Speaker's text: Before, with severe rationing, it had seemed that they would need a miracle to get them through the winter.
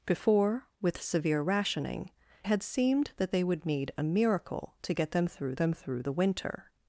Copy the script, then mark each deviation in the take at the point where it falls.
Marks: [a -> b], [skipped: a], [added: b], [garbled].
Before, with severe rationing, [skipped: it] had seemed that they would need a miracle to get them through [added: them through] the winter.